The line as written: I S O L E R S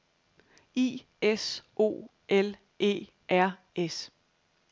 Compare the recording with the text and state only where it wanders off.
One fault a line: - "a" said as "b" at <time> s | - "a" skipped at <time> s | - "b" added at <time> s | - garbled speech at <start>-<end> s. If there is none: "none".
none